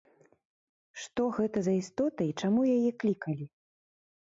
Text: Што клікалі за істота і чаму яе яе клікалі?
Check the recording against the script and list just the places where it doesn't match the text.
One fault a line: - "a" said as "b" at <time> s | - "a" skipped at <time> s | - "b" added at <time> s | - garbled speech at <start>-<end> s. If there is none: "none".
- "клікалі" said as "гэта" at 1.4 s
- "яе" skipped at 2.9 s